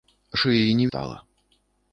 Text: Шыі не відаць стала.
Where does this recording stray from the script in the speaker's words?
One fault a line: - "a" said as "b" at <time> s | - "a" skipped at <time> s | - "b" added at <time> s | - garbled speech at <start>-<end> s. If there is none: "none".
- "відаць" skipped at 0.9 s